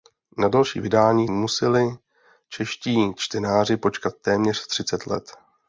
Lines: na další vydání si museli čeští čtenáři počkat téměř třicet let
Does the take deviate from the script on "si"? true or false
true